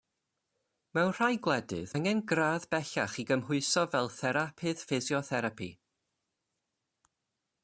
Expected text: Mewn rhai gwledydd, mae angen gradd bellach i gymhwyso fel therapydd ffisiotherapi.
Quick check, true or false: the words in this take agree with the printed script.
false